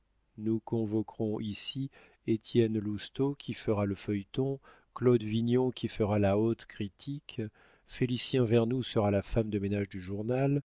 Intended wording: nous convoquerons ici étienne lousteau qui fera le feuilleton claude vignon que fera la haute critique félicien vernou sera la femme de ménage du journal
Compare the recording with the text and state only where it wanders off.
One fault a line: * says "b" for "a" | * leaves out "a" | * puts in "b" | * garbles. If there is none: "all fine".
* says "qui" for "que"